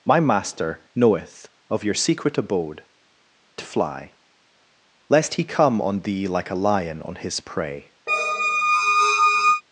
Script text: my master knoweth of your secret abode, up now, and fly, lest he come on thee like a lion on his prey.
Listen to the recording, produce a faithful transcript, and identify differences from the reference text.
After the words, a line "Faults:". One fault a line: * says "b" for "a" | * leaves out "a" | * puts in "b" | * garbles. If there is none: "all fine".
my master knoweth of your secret abode, fly, lest he come on thee like a lion on his prey.
Faults:
* leaves out "up now and"